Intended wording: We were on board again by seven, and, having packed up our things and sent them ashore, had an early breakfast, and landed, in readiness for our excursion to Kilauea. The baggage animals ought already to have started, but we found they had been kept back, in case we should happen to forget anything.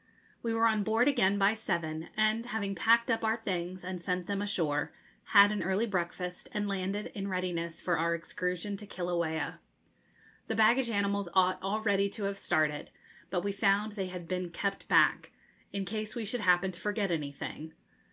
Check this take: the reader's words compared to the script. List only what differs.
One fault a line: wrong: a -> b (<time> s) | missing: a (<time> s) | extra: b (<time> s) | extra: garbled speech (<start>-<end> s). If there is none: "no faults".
no faults